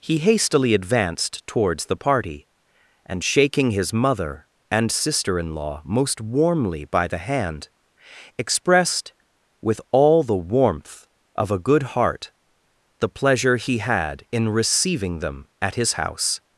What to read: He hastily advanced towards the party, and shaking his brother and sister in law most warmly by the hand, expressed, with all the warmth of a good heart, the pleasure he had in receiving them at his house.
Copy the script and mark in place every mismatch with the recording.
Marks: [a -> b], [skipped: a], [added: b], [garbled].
He hastily advanced towards the party, and shaking his [brother -> mother] and sister in law most warmly by the hand, expressed, with all the warmth of a good heart, the pleasure he had in receiving them at his house.